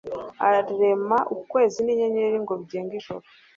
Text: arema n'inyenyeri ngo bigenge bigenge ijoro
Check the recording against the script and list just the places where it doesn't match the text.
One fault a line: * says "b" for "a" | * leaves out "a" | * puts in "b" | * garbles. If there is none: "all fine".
* puts in "ukwezi"
* leaves out "bigenge"